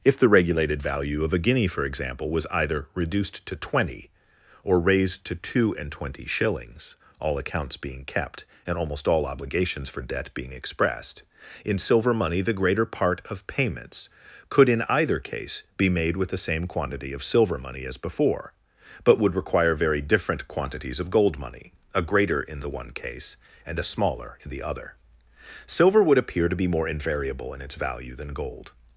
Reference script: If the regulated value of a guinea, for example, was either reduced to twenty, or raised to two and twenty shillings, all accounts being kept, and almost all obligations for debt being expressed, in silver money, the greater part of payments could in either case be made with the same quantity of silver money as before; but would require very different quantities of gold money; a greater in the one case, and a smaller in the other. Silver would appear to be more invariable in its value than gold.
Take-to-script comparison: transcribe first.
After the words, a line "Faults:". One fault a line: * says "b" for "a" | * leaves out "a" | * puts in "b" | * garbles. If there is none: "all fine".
If the regulated value of a guinea, for example, was either reduced to twenty, or raised to two and twenty shillings, all accounts being kept, and almost all obligations for debt being expressed, in silver money, the greater part of payments could in either case be made with the same quantity of silver money as before; but would require very different quantities of gold money; a greater in the one case, and a smaller in the other. Silver would appear to be more invariable in its value than gold.
Faults:
all fine